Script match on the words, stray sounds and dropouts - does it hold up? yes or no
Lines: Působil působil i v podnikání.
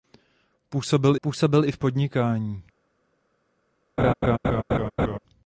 no